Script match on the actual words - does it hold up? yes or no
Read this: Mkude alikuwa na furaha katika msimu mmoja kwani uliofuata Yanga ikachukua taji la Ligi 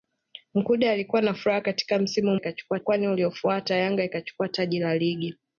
no